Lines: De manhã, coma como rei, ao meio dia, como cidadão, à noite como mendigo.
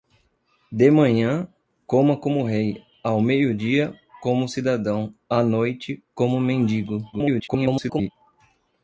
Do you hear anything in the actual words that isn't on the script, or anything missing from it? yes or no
yes